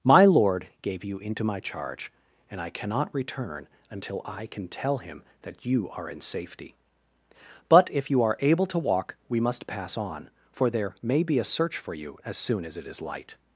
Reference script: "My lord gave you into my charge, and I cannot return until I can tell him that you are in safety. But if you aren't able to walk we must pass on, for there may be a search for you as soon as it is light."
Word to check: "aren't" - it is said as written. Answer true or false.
false